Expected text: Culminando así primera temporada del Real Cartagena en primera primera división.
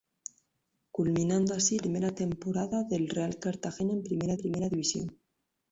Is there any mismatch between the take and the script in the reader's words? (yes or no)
no